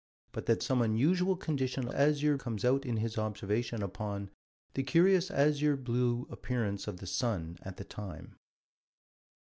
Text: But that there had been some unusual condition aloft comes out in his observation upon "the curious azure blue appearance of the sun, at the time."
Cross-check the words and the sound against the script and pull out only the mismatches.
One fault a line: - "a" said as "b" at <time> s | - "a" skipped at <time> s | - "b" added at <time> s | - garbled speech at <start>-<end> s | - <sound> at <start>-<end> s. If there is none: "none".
- "there had been" skipped at 0.6 s
- "aloft" said as "azure" at 1.9 s